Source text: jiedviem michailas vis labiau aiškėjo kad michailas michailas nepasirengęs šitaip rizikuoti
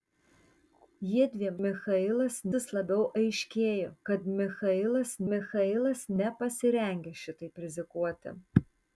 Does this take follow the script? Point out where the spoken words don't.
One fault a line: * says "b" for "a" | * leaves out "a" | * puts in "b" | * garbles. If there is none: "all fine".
all fine